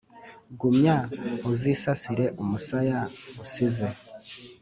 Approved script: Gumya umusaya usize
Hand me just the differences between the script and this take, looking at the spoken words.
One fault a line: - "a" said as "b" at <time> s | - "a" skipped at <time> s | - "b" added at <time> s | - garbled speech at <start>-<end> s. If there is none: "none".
- "uzisasire" added at 1.5 s